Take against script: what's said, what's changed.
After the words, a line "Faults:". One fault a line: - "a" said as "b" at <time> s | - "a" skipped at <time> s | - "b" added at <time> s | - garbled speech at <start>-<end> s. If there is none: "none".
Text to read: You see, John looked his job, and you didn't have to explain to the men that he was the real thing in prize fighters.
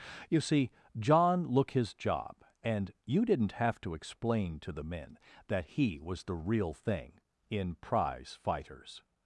You see, John look his job, and you didn't have to explain to the men that he was the real thing in prize fighters.
Faults:
- "looked" said as "look" at 1.4 s